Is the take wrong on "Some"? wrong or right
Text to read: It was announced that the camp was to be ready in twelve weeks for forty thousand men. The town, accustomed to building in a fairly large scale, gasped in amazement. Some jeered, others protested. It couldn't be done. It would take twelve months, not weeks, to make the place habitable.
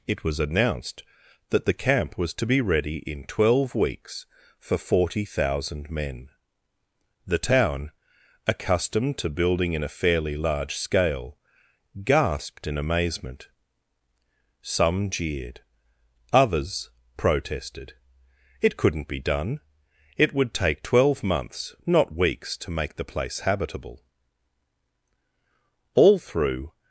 right